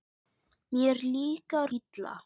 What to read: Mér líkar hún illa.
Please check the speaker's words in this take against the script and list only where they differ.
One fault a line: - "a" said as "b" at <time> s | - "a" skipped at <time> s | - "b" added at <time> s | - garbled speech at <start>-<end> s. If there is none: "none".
- "hún" skipped at 1.7 s